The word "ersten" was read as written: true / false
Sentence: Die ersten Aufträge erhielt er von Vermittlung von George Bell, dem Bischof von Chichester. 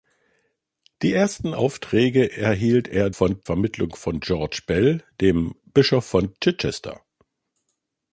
true